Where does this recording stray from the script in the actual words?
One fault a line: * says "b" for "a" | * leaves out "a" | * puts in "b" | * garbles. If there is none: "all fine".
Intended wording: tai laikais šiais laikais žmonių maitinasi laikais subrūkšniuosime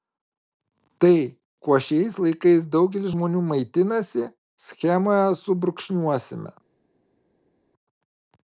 * says "kuo" for "laikais"
* puts in "daugelis"
* says "schemoje" for "laikais"